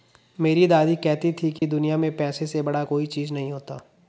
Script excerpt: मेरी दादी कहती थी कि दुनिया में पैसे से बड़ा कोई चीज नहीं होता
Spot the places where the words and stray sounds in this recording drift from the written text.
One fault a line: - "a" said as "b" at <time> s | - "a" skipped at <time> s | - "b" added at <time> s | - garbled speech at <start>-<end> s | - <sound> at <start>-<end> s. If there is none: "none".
- dropout at 1.6-1.6 s